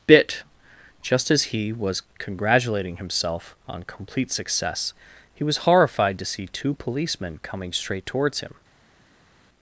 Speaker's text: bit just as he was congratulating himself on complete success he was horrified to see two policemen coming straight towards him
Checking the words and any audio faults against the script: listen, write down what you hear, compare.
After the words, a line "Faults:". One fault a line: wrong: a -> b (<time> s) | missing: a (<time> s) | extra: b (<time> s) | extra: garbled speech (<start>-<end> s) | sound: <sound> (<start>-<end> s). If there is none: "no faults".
bit just as he was congratulating himself on complete success he was horrified to see two policemen coming straight towards him
Faults:
no faults